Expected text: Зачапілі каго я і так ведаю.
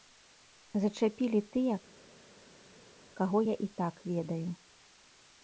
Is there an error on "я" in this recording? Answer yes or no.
no